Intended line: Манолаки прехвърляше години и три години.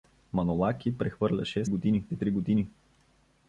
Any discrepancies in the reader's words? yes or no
no